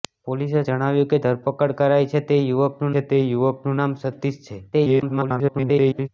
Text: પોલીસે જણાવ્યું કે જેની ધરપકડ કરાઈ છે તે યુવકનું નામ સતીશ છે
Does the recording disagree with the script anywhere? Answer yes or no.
yes